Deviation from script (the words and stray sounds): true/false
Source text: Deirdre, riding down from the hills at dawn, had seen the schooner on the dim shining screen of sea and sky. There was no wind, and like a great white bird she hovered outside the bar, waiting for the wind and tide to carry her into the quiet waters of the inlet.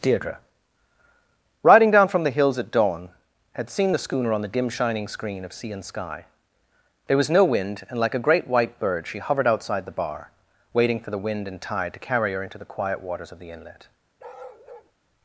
true